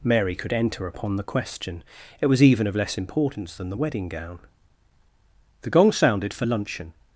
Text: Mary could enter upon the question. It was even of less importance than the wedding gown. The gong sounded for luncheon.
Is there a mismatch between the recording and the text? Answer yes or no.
no